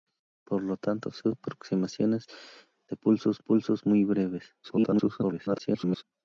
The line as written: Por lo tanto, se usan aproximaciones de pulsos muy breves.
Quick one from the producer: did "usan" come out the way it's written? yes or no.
no